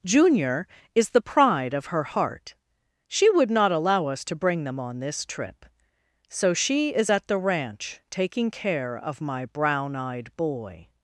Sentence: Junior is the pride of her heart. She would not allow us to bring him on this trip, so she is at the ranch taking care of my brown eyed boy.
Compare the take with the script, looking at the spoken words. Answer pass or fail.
fail